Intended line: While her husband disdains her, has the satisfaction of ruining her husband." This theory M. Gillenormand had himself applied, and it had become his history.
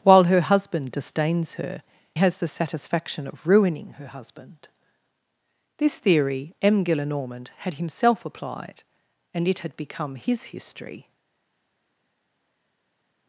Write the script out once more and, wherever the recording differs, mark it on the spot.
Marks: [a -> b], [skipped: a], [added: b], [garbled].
While her husband disdains her, has the satisfaction of ruining her husband." This theory M. Gillenormand had himself applied, and it had become his history.